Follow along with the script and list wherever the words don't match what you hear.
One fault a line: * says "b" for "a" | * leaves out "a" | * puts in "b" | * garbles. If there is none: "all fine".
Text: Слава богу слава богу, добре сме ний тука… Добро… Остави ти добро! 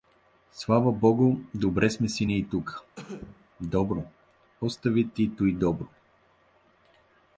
* leaves out "слава богу"
* puts in "си"
* puts in "туй"